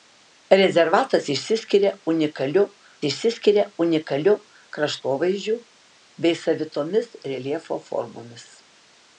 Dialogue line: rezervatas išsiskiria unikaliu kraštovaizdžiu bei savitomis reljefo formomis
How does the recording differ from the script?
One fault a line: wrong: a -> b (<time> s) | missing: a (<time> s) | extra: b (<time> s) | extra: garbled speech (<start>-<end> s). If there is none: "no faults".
extra: išsiskiria unikaliu (3.1 s)